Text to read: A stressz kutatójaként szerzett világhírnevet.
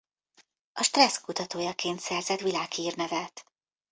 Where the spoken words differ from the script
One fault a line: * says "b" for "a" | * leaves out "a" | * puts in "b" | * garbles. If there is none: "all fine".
all fine